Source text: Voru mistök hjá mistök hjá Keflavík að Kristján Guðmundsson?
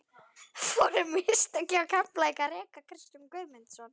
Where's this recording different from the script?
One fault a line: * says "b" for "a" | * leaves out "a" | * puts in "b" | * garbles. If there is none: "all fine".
* leaves out "mistök hjá"
* puts in "reka"